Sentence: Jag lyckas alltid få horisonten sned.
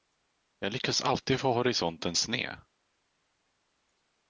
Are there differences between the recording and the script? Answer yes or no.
no